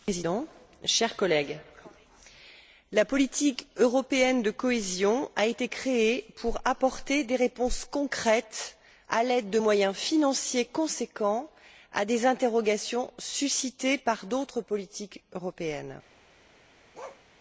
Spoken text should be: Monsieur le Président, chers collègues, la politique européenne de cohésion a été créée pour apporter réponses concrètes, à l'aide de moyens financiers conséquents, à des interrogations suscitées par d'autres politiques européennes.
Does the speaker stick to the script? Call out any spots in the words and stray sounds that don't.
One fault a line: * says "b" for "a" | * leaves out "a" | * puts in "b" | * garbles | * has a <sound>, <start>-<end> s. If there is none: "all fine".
* puts in "des"
* has a bark, 16.9-17.2 s